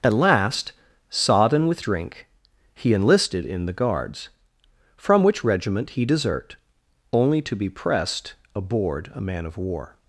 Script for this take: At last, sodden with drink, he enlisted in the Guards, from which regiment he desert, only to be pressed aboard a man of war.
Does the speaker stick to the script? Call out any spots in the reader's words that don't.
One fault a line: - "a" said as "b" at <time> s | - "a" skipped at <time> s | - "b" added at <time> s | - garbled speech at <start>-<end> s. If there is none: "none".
none